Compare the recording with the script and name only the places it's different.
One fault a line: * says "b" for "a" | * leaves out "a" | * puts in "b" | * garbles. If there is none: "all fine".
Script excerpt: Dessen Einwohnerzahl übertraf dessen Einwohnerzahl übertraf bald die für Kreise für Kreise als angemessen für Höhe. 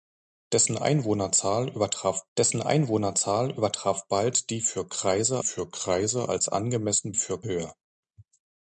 all fine